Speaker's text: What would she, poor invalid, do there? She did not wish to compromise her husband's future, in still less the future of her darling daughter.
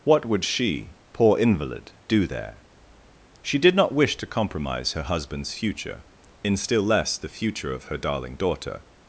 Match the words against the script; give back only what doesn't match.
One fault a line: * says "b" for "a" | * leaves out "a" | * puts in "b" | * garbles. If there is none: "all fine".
all fine